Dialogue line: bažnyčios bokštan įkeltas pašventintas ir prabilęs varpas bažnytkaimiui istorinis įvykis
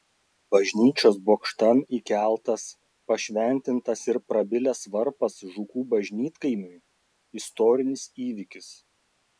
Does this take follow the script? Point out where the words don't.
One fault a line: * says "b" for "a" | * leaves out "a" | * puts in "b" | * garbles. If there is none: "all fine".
* puts in "žukų"